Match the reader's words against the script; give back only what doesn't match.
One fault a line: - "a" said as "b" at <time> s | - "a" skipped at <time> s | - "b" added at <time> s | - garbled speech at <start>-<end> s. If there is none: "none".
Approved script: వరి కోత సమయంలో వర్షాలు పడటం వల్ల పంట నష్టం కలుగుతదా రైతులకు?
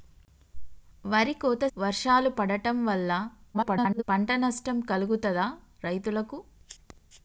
- "సమయంలో" skipped at 1.6 s
- garbled speech at 3.5-4.0 s